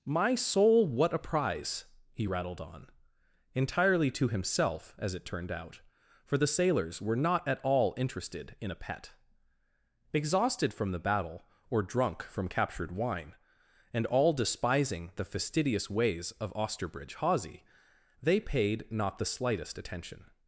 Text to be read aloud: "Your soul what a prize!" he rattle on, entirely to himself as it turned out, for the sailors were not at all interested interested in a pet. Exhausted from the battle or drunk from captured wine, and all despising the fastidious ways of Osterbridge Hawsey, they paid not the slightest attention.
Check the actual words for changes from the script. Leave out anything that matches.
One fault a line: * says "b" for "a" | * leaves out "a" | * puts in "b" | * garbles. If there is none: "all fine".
* says "My" for "Your"
* says "rattled" for "rattle"
* leaves out "interested"